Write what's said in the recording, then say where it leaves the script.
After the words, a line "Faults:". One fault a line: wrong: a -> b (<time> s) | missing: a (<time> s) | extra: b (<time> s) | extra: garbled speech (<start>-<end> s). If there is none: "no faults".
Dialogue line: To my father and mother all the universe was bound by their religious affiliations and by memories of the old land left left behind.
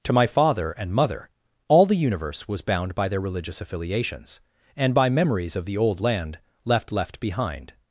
To my father and mother all the universe was bound by their religious affiliations and by memories of the old land left left behind.
Faults:
no faults